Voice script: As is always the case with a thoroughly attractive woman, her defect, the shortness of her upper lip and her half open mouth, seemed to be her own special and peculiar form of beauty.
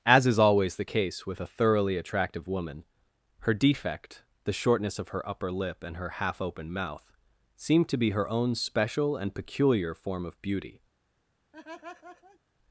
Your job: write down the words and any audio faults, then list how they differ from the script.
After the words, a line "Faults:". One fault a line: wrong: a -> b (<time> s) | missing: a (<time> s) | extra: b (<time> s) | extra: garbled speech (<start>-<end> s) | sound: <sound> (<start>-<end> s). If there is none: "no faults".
As is always the case with a thoroughly attractive woman, her defect, the shortness of her upper lip and her half open mouth, seemed to be her own special and peculiar form of beauty.
Faults:
sound: laugh (11.5-12.4 s)